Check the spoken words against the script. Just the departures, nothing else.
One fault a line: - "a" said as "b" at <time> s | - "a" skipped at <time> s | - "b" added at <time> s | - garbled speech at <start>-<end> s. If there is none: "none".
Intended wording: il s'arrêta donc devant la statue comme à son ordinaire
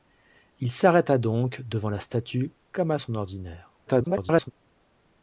- garbled speech at 3.9-4.5 s